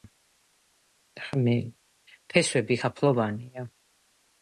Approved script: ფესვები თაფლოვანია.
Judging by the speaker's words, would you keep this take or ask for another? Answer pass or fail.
pass